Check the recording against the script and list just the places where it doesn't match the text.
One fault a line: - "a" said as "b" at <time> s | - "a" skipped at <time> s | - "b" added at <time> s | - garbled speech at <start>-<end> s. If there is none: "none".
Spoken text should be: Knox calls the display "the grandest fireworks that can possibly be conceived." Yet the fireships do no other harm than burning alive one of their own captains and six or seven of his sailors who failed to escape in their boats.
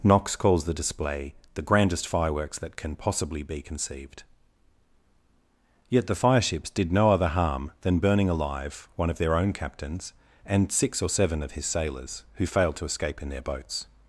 - "do" said as "did" at 6.7 s